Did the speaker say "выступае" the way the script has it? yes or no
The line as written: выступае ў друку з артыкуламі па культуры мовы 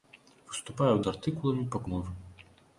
yes